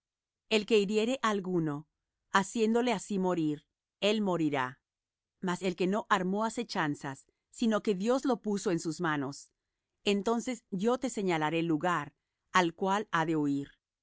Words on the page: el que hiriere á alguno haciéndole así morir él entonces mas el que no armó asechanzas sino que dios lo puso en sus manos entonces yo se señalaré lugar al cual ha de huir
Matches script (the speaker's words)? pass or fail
fail